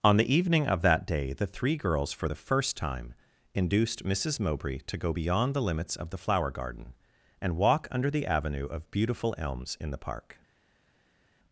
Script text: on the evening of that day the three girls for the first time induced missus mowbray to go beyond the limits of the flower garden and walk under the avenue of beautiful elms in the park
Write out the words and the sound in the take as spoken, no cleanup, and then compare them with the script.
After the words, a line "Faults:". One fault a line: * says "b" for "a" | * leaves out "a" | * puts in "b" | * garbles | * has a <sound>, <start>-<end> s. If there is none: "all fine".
on the evening of that day the three girls for the first time induced missus mowbray to go beyond the limits of the flower garden and walk under the avenue of beautiful elms in the park
Faults:
all fine